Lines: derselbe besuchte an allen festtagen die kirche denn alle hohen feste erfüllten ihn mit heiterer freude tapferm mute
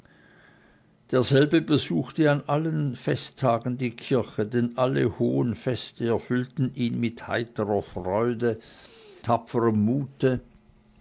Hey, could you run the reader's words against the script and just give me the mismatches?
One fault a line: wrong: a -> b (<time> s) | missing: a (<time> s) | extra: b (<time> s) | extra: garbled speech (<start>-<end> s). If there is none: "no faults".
no faults